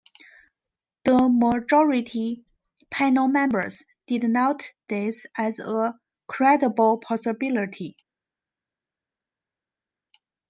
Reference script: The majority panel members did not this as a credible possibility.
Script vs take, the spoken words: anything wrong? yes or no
no